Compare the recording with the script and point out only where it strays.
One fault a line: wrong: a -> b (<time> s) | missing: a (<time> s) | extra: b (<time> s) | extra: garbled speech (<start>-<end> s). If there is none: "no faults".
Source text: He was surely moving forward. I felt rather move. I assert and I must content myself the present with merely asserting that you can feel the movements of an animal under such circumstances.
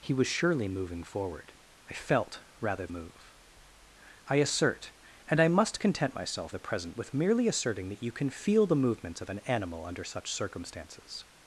no faults